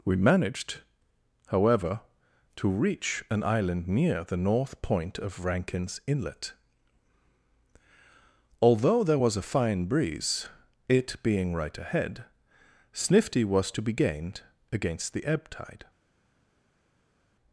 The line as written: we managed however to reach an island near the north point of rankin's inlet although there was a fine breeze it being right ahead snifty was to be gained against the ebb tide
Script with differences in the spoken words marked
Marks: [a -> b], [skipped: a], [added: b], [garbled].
we managed however to reach an island near the north point of rankin's inlet although there was a fine breeze it being right ahead snifty was to be gained against the ebb tide